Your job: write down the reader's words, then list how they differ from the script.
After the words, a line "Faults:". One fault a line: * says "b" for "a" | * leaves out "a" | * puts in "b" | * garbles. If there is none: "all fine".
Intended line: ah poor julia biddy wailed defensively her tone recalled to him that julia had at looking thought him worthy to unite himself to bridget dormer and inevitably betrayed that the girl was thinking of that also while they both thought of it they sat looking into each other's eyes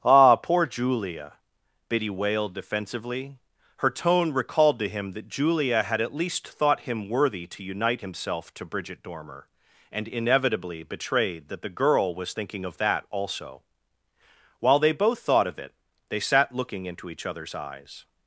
ah poor julia biddy wailed defensively her tone recalled to him that julia had at least thought him worthy to unite himself to bridget dormer and inevitably betrayed that the girl was thinking of that also while they both thought of it they sat looking into each other's eyes
Faults:
* says "least" for "looking"